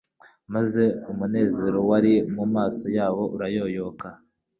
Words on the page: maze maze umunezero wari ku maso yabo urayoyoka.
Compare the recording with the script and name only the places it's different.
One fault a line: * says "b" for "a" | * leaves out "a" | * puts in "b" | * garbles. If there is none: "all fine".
* leaves out "maze"
* says "mu" for "ku"